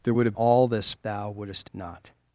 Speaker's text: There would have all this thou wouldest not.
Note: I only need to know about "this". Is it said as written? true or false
true